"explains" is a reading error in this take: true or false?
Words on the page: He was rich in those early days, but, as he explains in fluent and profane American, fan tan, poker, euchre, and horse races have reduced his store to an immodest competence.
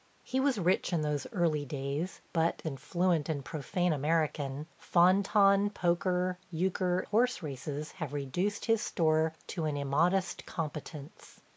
true